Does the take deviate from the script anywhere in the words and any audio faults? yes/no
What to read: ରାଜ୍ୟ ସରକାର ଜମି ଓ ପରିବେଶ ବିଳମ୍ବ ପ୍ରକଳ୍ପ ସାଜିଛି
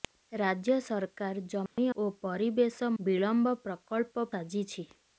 yes